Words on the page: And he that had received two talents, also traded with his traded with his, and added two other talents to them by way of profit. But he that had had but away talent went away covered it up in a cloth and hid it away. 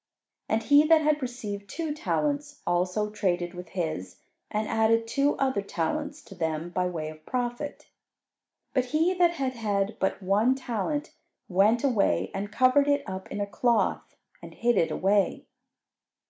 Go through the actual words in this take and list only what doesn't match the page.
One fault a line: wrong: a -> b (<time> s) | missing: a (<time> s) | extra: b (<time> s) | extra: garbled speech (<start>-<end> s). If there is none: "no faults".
missing: traded with his (4.2 s)
wrong: away -> one (10.2 s)
extra: and (12.3 s)